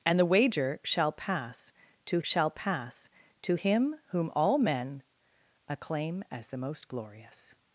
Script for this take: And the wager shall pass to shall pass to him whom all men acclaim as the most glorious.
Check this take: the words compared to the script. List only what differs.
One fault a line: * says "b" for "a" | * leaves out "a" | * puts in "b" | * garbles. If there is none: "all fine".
all fine